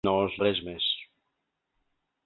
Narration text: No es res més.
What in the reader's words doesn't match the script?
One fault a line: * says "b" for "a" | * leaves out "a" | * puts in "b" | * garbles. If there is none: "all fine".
all fine